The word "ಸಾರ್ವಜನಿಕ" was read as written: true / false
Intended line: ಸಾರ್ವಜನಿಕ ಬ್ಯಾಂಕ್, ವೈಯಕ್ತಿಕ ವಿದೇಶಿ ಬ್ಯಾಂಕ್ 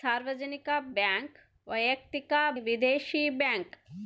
true